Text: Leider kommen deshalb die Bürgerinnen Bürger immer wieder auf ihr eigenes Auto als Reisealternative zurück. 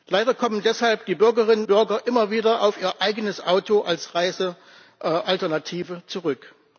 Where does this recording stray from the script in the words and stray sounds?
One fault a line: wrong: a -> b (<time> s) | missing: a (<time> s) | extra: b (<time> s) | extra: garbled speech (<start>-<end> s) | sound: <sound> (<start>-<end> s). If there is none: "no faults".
no faults